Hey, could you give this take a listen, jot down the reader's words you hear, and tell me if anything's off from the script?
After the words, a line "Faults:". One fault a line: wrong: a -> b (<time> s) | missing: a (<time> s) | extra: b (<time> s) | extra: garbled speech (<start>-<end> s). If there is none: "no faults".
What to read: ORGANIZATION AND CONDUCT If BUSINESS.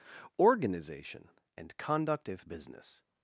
ORGANIZATION AND CONDUCT If BUSINESS.
Faults:
no faults